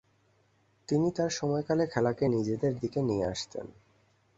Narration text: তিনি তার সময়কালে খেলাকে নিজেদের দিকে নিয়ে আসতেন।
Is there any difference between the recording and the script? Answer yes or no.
no